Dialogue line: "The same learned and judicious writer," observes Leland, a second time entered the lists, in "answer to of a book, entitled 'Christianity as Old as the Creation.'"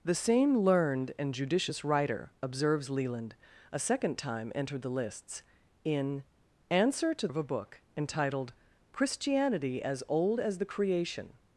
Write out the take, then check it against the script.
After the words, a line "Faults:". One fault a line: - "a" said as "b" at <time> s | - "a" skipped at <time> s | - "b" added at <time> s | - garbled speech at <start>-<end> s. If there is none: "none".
"The same learned and judicious writer," observes Leland, a second time entered the lists, in "answer to of a book, entitled 'Christianity as Old as the Creation.'"
Faults:
none